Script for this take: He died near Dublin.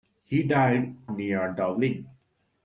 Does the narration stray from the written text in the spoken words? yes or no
no